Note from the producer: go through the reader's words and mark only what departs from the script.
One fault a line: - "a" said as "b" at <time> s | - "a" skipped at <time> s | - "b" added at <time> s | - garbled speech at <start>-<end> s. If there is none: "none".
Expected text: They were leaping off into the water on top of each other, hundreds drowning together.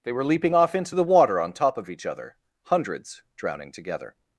none